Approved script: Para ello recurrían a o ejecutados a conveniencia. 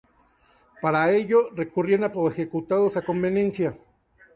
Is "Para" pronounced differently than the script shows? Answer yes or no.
no